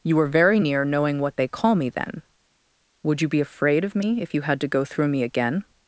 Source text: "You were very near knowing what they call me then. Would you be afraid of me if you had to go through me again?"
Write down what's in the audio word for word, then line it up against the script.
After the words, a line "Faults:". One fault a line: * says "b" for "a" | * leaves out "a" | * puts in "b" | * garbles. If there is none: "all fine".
"You were very near knowing what they call me then. Would you be afraid of me if you had to go through me again?"
Faults:
all fine